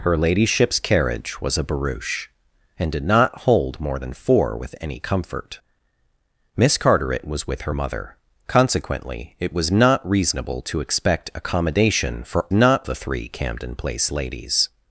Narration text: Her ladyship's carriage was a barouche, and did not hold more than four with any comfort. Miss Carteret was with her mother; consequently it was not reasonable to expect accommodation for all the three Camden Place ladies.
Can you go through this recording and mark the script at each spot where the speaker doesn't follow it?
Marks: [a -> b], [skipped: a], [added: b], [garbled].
Her ladyship's carriage was a barouche, and did not hold more than four with any comfort. Miss Carteret was with her mother; consequently it was not reasonable to expect accommodation for [all -> not] the three Camden Place ladies.